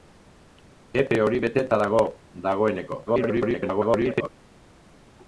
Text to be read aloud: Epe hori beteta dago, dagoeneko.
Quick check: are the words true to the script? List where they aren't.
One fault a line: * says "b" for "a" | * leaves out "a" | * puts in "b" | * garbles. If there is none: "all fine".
* garbles